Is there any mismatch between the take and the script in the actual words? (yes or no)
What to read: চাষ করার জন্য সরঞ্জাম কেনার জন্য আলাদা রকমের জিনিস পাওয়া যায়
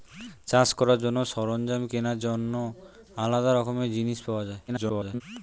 yes